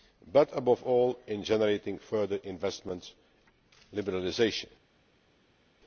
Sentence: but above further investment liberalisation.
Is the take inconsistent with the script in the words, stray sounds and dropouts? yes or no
yes